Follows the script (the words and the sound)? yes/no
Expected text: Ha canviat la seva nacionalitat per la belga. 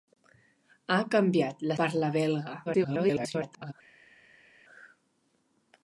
no